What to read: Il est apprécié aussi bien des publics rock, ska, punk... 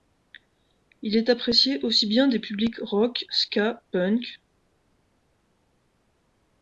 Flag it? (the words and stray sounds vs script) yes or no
no